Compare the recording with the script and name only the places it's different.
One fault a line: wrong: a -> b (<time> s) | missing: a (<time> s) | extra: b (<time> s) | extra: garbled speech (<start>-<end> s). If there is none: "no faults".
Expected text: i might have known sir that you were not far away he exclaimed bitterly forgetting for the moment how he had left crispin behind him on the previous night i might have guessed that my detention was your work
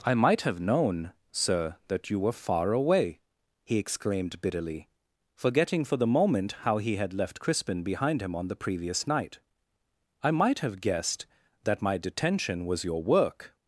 missing: not (2.3 s)